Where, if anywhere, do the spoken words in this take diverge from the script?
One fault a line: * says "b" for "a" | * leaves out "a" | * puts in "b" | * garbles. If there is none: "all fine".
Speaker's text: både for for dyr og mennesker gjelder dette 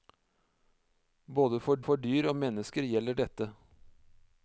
all fine